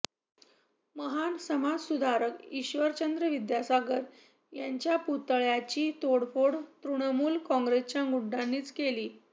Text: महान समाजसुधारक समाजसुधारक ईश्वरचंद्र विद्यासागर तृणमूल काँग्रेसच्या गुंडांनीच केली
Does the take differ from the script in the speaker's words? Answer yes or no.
yes